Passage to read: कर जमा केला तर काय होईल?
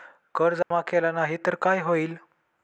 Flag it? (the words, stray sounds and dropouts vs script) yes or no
yes